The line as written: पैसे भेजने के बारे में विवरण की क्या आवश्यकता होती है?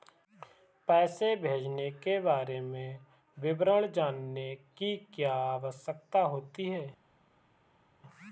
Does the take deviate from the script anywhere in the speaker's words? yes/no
yes